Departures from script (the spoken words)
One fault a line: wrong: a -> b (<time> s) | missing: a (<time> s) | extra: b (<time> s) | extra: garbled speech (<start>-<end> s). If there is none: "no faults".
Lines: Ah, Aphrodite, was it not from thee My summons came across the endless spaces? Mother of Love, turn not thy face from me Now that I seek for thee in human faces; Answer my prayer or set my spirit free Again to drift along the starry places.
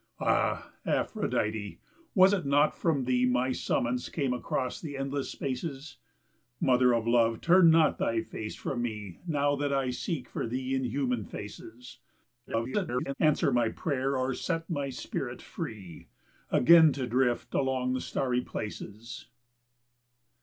extra: garbled speech (12.5-13.1 s)